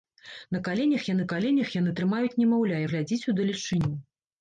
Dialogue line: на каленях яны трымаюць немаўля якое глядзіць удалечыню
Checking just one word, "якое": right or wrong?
wrong